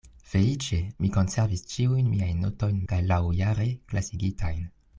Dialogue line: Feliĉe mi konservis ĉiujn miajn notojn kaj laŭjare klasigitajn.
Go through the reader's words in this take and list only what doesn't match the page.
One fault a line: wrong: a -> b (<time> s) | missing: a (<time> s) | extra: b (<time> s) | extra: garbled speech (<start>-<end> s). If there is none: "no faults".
no faults